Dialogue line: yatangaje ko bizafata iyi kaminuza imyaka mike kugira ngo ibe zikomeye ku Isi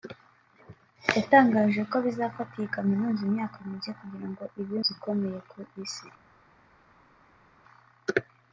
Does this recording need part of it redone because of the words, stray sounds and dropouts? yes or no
no